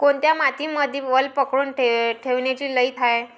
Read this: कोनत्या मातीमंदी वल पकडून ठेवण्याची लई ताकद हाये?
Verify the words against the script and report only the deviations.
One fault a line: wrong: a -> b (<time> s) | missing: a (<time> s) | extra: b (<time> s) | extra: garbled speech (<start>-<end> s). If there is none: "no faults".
missing: ताकद (2.9 s)